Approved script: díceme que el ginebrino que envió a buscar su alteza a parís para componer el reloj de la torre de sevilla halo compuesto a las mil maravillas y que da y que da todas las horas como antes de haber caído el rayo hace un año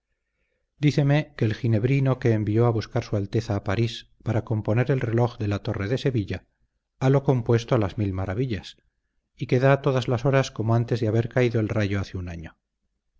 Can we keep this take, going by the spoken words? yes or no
no